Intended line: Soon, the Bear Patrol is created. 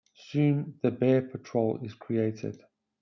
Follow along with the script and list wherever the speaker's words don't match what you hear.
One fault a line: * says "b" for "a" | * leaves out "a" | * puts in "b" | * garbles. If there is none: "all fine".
all fine